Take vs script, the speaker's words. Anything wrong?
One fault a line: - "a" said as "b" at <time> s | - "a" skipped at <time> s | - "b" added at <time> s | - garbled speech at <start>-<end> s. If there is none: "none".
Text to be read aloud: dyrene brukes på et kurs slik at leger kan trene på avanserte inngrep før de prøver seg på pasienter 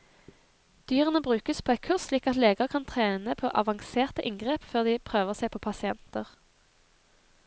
none